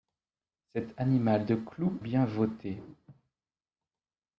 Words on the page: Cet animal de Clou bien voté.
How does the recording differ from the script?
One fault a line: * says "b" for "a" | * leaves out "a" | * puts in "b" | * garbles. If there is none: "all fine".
all fine